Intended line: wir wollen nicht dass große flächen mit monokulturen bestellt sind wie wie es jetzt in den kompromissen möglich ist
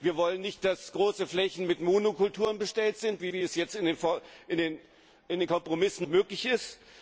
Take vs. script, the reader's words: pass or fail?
pass